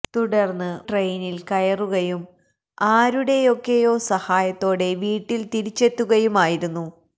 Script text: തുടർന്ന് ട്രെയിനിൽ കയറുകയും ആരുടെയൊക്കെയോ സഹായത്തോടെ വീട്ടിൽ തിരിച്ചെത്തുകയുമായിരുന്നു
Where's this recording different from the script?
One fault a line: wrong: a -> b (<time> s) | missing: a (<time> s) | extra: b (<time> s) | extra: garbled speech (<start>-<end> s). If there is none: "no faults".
no faults